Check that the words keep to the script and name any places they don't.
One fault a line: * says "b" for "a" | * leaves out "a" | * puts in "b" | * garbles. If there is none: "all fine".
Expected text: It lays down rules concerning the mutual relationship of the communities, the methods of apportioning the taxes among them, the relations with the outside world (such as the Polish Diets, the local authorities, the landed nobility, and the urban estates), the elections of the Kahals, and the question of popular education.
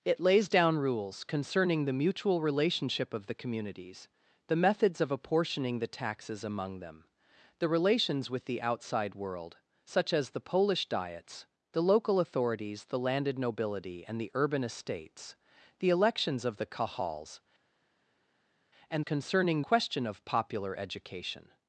* says "concerning" for "the"